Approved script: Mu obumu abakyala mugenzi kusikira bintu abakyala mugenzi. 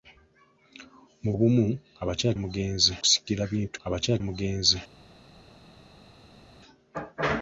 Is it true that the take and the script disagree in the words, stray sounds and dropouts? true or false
false